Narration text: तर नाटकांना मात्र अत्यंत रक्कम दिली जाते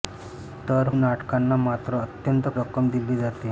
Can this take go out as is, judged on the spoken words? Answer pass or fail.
pass